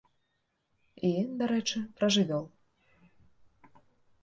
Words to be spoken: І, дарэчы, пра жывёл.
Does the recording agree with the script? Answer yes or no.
yes